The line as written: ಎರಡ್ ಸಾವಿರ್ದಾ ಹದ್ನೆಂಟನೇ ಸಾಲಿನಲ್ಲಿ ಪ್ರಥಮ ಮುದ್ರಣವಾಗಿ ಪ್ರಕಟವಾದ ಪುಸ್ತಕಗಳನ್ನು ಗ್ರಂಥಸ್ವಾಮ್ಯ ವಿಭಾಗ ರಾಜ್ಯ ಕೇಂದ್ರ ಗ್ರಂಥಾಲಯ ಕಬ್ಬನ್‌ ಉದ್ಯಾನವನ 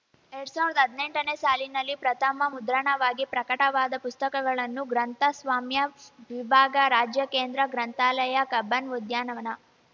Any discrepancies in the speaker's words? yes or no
no